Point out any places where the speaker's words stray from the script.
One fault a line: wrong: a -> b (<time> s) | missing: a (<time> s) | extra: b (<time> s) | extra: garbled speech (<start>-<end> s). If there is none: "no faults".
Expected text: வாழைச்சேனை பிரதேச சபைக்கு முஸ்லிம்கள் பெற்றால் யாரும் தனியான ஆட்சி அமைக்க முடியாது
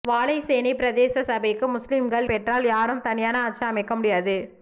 no faults